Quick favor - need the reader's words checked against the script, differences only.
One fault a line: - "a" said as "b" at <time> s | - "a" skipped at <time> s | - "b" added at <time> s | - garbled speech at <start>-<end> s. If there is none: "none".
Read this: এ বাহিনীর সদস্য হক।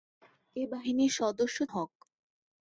none